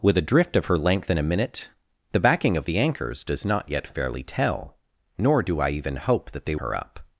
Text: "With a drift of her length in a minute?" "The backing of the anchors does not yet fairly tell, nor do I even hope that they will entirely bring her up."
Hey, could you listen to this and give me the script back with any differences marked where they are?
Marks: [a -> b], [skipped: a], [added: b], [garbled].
"With a drift of her length in a minute?" "The backing of the anchors does not yet fairly tell, nor do I even hope that they [skipped: will entirely bring] her up."